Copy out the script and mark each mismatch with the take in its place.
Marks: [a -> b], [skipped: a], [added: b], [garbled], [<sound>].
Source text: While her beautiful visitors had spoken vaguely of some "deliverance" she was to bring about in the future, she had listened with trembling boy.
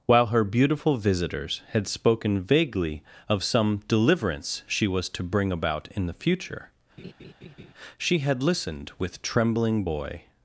While her beautiful visitors had spoken vaguely of some "deliverance" she was to bring about in the future, [laugh] she had listened with trembling boy.